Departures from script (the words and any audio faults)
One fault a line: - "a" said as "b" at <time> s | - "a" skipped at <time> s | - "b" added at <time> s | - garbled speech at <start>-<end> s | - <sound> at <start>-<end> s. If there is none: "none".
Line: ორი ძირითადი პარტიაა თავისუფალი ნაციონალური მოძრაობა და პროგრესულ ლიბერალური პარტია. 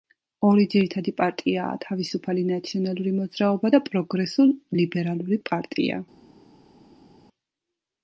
none